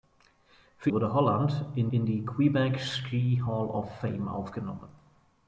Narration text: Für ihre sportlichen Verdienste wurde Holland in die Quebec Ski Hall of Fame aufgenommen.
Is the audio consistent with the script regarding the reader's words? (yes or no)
no